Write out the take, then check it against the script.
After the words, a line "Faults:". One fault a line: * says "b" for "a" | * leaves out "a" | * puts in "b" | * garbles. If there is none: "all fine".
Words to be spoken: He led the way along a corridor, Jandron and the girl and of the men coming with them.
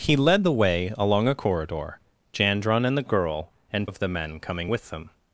He led the way along a corridor, Jandron and the girl and of the men coming with them.
Faults:
all fine